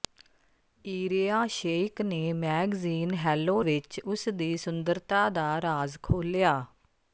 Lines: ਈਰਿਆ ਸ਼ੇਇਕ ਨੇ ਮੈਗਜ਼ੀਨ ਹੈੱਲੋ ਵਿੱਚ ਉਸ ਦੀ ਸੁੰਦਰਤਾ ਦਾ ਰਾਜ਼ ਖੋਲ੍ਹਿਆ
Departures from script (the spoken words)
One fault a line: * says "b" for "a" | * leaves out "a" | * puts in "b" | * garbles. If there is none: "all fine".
all fine